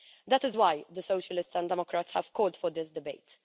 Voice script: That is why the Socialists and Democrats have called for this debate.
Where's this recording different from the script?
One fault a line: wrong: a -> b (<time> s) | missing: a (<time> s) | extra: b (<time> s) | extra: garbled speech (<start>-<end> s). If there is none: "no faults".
no faults